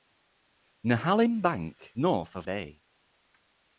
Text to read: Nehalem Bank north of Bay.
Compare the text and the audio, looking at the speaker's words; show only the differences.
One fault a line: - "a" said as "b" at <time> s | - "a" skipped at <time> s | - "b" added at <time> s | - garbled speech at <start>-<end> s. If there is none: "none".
none